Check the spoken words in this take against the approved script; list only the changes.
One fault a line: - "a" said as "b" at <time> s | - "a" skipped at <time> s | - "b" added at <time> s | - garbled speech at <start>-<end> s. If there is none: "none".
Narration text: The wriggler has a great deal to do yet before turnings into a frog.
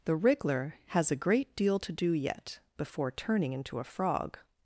- "turnings" said as "turning" at 3.1 s